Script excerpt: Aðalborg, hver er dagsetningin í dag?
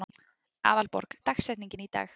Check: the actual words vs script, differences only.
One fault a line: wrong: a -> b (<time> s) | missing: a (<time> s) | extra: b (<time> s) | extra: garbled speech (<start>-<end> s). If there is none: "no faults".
missing: hver (1.2 s)